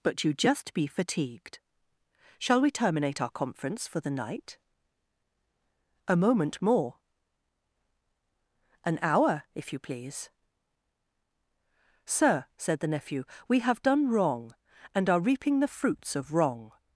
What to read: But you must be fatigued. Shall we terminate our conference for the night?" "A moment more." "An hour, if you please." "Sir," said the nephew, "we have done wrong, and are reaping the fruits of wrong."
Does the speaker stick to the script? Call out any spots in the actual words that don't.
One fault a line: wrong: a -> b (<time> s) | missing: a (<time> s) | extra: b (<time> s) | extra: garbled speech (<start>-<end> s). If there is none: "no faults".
wrong: must -> just (0.3 s)